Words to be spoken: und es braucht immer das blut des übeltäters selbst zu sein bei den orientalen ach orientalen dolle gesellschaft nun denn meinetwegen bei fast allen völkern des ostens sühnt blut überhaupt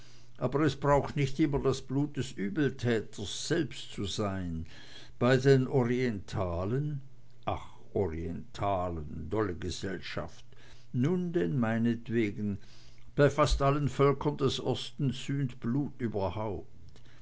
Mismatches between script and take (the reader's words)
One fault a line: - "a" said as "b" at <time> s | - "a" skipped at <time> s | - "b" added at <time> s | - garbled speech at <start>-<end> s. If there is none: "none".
- "und" said as "aber" at 0.4 s
- "nicht" added at 1.1 s